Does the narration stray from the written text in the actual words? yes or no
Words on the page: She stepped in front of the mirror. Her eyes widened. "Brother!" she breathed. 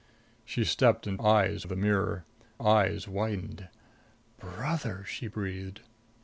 yes